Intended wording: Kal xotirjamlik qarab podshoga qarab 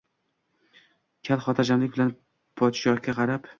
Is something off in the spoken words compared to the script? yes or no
yes